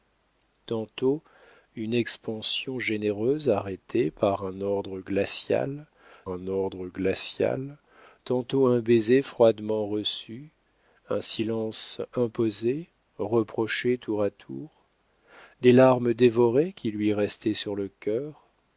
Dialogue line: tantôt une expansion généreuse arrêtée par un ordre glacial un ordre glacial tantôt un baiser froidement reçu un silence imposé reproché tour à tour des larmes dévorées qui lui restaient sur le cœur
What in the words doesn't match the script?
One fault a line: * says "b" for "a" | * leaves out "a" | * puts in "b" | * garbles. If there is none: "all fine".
all fine